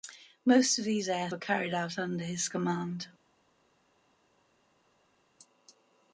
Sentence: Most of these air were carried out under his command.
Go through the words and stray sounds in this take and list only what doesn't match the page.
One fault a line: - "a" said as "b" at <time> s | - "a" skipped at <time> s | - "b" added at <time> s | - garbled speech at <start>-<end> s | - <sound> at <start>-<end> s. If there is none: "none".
none